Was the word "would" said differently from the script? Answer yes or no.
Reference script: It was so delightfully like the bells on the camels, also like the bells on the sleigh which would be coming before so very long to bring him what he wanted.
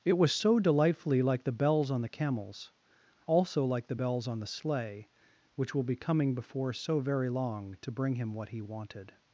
yes